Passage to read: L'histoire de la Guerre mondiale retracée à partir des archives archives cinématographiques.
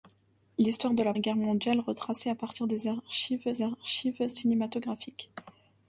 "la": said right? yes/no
yes